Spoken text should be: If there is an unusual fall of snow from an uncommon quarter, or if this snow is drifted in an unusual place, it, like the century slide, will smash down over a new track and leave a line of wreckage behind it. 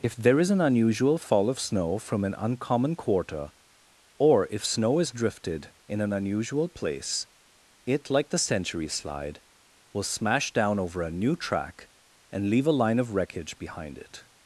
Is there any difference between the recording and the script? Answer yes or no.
yes